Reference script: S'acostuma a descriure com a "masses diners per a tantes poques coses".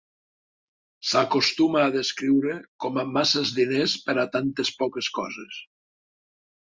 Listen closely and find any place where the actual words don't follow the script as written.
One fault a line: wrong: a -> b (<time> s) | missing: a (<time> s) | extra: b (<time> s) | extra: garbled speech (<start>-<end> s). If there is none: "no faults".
no faults